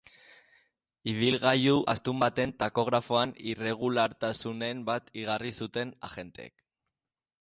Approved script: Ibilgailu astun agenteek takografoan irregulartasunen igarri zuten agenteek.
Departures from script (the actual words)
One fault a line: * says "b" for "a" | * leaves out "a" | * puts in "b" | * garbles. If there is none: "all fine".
* says "baten" for "agenteek"
* puts in "bat"